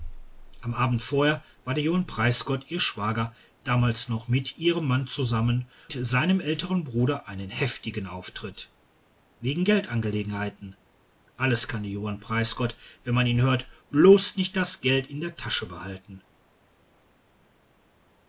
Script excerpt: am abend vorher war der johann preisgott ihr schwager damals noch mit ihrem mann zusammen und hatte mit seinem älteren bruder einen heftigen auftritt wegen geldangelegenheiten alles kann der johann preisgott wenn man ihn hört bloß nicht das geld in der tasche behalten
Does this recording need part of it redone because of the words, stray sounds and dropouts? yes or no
yes